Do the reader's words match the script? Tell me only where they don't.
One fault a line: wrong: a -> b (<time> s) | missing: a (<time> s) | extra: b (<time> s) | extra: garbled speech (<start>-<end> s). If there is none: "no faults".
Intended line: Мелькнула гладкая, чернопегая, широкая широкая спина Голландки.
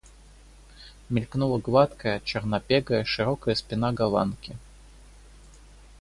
missing: широкая (3.5 s)